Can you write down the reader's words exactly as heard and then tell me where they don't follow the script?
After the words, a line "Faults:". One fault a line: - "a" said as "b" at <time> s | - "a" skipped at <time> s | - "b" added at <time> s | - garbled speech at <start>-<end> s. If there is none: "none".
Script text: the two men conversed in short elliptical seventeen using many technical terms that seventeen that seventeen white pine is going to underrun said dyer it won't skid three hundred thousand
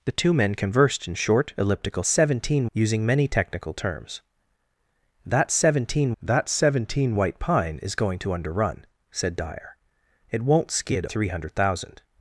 the two men conversed in short elliptical seventeen using many technical terms that seventeen that seventeen white pine is going to underrun said dyer it won't skid three hundred thousand
Faults:
none